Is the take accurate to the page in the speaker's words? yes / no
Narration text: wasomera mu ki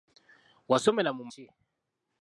yes